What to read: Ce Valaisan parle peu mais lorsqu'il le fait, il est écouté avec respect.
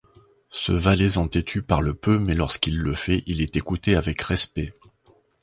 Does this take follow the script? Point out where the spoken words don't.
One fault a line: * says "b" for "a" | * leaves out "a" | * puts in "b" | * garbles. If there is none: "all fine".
* puts in "têtu"